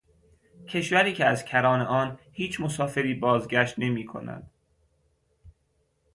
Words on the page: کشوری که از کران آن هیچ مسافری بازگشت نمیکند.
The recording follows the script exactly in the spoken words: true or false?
true